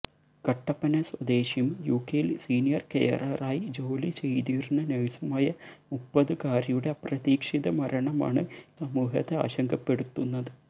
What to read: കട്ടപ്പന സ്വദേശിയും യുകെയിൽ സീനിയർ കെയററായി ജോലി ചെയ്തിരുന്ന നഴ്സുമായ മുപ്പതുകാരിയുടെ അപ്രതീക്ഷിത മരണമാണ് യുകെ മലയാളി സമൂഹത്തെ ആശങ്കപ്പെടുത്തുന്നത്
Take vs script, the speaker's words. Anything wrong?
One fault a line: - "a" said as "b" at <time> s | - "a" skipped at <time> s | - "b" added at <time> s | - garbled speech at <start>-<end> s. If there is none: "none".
- "യുകെ മലയാളി" skipped at 8.4 s